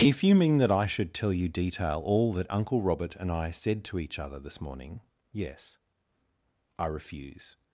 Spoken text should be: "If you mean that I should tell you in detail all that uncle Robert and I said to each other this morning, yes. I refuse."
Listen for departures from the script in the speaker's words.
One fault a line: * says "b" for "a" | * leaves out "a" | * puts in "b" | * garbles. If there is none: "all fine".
* leaves out "in"